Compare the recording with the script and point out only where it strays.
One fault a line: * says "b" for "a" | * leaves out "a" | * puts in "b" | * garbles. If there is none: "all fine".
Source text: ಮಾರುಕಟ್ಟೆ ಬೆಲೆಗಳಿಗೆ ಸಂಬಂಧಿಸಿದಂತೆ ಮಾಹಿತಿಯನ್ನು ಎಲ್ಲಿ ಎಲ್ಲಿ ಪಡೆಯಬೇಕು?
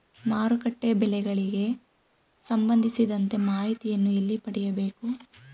* leaves out "ಎಲ್ಲಿ"